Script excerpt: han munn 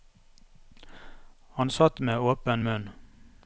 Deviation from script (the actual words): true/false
true